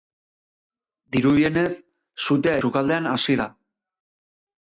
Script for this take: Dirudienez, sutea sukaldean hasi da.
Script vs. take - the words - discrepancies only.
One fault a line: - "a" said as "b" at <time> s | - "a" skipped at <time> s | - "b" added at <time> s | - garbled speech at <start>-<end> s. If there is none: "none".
none